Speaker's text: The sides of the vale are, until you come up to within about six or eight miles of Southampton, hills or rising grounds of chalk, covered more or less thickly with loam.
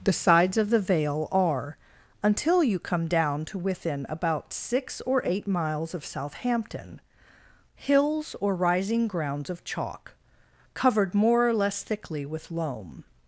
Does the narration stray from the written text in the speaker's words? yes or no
yes